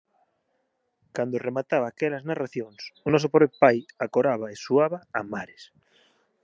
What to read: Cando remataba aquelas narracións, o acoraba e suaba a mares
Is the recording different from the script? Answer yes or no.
yes